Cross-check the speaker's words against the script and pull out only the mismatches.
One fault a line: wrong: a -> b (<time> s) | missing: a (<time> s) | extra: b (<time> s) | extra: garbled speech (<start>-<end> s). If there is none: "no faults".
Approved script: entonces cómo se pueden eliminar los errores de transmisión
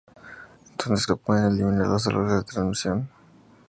missing: cómo (1.1 s)